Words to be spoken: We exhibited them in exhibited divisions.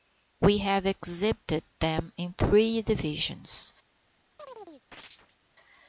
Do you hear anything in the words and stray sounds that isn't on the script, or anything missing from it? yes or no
yes